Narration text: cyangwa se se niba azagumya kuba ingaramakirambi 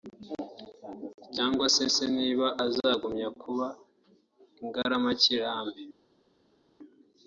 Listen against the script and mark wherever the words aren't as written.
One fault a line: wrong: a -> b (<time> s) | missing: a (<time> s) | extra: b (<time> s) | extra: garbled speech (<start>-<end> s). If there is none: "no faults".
no faults